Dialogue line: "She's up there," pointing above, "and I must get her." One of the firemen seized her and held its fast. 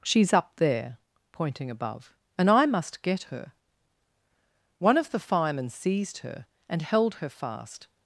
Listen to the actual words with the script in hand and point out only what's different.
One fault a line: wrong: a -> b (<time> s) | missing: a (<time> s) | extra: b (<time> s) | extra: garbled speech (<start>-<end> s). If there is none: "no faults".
wrong: its -> her (7.2 s)